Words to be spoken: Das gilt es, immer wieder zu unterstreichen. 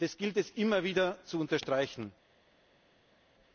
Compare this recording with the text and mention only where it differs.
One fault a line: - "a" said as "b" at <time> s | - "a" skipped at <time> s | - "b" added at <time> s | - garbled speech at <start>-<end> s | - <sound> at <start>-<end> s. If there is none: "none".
none